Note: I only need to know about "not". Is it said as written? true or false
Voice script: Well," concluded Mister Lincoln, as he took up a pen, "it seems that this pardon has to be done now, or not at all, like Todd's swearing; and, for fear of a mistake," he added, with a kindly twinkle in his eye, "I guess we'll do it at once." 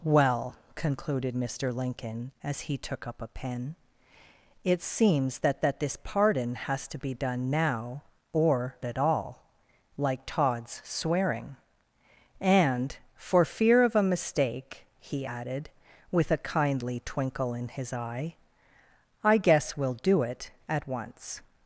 false